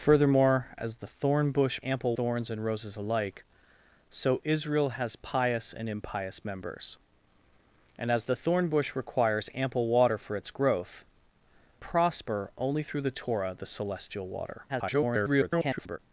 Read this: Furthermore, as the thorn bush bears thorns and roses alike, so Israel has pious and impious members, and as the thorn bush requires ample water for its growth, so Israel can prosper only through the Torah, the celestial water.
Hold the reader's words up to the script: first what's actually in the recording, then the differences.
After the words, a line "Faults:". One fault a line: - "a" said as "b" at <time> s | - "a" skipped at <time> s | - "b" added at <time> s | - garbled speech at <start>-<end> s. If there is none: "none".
Furthermore, as the thorn bush ample thorns and roses alike, so Israel has pious and impious members, and as the thorn bush requires ample water for its growth, prosper only through the Torah, the celestial water. [garbled]
Faults:
- "bears" said as "ample" at 1.8 s
- "so Israel can" skipped at 11.0 s
- garbled speech at 14.7-16.0 s